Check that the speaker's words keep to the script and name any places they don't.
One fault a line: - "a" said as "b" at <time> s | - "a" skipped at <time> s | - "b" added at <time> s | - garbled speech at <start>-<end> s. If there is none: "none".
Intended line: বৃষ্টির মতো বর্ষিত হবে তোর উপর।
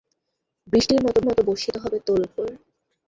- "মতো" added at 1.2 s